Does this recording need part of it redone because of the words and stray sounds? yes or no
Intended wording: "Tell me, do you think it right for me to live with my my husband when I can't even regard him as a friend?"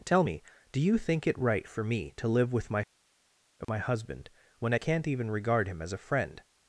yes